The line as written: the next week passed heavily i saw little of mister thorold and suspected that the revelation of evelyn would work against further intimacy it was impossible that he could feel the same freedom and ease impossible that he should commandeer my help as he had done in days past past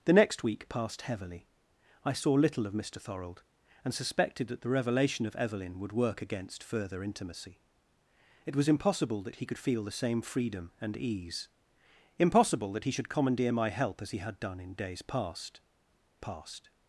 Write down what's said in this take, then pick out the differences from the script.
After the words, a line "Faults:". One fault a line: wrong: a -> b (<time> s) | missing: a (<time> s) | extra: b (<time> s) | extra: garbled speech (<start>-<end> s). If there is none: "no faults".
the next week passed heavily i saw little of mister thorold and suspected that the revelation of evelyn would work against further intimacy it was impossible that he could feel the same freedom and ease impossible that he should commandeer my help as he had done in days past past
Faults:
no faults